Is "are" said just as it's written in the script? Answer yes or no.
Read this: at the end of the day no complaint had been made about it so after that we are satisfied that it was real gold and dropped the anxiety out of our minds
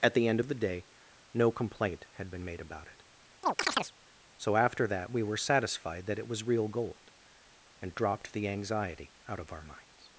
no